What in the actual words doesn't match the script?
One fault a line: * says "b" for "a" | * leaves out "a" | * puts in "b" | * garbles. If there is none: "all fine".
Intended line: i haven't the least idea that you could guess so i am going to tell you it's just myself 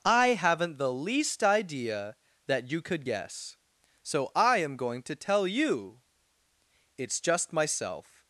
all fine